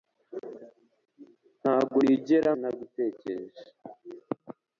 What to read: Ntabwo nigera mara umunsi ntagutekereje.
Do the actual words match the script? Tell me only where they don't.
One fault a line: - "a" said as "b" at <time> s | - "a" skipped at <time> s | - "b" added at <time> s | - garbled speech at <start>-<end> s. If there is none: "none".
- "mara umunsi" skipped at 2.5 s